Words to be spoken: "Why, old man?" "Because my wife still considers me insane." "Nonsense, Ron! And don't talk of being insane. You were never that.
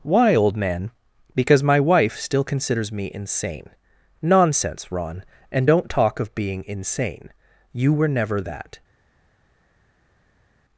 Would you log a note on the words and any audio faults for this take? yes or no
no